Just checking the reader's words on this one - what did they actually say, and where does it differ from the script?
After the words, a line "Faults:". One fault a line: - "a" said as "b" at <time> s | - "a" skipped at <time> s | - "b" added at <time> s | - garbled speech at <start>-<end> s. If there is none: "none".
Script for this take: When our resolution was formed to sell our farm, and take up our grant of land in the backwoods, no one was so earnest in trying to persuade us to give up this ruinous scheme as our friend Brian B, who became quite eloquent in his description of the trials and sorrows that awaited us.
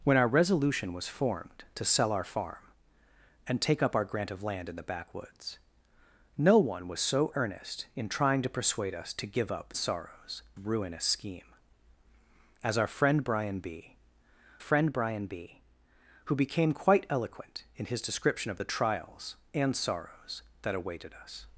When our resolution was formed to sell our farm, and take up our grant of land in the backwoods, no one was so earnest in trying to persuade us to give up sorrows ruinous scheme as our friend Brian B friend Brian B, who became quite eloquent in his description of the trials and sorrows that awaited us.
Faults:
- "this" said as "sorrows" at 9.8 s
- "friend Brian B" added at 14.6 s